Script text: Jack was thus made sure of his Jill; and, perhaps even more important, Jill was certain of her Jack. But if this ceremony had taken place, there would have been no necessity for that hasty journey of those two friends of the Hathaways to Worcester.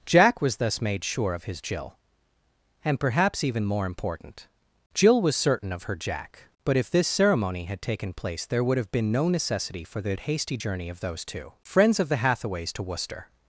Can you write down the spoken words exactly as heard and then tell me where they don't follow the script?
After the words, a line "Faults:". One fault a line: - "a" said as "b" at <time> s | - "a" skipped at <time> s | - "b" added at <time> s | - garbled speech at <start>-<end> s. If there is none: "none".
Jack was thus made sure of his Jill; and, perhaps even more important, Jill was certain of her Jack. But if this ceremony had taken place, there would have been no necessity for the hasty journey of those two friends of the Hathaways to Worcester.
Faults:
- "that" said as "the" at 10.0 s